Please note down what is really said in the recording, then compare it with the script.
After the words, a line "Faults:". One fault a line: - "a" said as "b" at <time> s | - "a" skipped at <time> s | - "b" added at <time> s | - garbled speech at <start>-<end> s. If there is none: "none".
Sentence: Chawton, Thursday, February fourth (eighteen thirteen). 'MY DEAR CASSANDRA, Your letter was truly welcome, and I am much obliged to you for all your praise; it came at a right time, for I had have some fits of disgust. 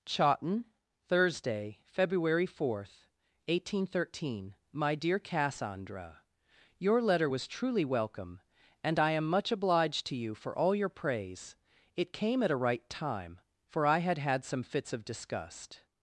Chawton, Thursday, February fourth (eighteen thirteen). 'MY DEAR CASSANDRA, Your letter was truly welcome, and I am much obliged to you for all your praise; it came at a right time, for I had had some fits of disgust.
Faults:
- "have" said as "had" at 14.2 s